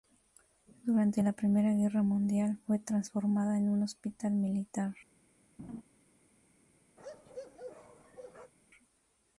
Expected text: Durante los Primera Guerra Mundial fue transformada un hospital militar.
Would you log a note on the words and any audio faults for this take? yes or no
yes